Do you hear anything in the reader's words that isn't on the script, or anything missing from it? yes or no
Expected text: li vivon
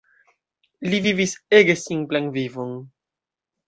yes